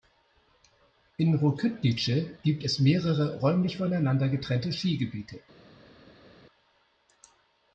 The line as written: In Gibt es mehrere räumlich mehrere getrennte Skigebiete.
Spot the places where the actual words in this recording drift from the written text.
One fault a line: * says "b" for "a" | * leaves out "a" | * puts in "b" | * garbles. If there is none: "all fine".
* puts in "Rokytnice"
* says "voneinander" for "mehrere"